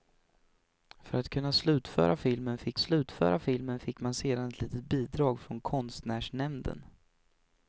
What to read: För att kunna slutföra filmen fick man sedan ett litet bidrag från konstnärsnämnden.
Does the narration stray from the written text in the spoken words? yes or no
yes